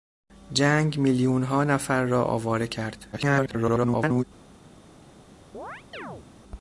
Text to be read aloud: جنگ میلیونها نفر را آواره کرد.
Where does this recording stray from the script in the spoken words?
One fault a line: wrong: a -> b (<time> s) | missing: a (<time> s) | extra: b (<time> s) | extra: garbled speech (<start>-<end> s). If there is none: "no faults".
extra: garbled speech (3.1-4.2 s)